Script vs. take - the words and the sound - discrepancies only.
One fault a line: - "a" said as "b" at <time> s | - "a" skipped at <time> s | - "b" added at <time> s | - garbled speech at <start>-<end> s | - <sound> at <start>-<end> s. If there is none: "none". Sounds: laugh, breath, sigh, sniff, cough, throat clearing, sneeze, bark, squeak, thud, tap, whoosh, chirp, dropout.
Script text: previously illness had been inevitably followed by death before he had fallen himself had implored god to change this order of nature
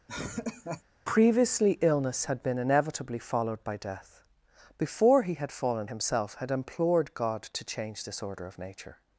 - laugh at 0.1-0.8 s